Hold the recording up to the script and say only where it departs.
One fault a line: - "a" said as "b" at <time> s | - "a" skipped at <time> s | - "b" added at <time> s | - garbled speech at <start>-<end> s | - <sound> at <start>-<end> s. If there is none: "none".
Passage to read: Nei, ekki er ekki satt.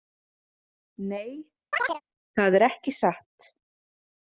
- chirp at 1.7-2.0 s
- "ekki" said as "það" at 2.4 s